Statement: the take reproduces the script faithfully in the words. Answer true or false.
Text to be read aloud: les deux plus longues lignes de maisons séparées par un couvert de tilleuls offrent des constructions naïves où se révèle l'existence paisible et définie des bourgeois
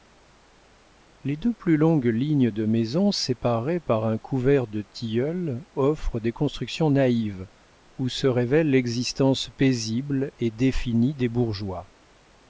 true